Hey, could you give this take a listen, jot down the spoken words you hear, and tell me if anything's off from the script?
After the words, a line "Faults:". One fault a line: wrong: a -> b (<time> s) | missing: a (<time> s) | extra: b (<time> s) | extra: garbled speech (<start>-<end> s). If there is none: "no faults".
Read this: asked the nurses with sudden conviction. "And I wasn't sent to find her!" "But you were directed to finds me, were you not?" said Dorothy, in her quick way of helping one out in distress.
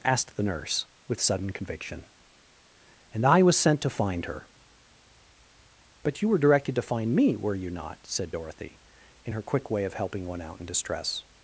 asked the nurse with sudden conviction. "And I was sent to find her!" "But you were directed to find me, were you not?" said Dorothy, in her quick way of helping one out in distress.
Faults:
wrong: nurses -> nurse (0.4 s)
wrong: wasn't -> was (3.4 s)
wrong: finds -> find (6.8 s)